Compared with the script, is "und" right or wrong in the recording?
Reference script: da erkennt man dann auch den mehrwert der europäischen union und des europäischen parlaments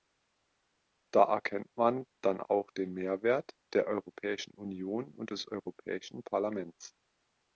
right